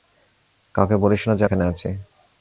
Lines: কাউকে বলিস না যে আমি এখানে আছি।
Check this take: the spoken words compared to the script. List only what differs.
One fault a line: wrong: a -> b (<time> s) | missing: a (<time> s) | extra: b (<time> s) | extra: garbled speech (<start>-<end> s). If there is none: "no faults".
missing: আমি (1.4 s)